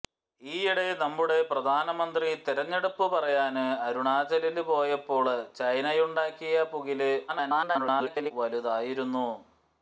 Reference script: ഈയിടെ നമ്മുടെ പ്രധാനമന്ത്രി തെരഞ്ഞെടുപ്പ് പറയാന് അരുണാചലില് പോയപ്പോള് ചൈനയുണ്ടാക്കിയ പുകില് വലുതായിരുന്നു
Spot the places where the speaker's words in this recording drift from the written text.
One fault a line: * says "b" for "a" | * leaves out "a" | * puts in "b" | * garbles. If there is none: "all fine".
* garbles